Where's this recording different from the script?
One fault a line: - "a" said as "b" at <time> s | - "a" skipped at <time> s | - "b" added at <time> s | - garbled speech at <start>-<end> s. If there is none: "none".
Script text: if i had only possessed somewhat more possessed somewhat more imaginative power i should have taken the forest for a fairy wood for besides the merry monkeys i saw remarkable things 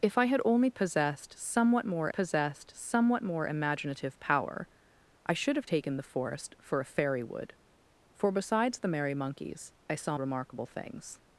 none